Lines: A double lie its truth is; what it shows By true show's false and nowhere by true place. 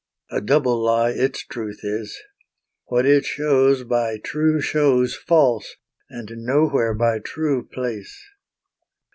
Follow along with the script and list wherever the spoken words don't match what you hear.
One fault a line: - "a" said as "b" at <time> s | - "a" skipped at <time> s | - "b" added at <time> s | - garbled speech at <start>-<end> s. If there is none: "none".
none